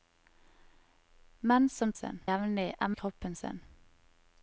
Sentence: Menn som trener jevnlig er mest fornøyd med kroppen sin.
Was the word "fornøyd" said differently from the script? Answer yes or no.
yes